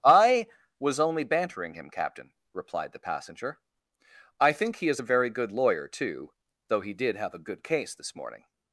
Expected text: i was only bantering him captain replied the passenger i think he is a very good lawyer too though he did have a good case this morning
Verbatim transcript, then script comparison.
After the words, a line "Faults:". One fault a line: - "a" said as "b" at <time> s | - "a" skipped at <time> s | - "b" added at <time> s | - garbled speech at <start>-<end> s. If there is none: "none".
i was only bantering him captain replied the passenger i think he is a very good lawyer too though he did have a good case this morning
Faults:
none